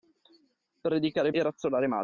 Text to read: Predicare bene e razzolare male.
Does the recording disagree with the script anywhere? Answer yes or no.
yes